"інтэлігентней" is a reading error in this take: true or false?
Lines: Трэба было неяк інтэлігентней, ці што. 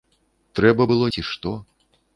true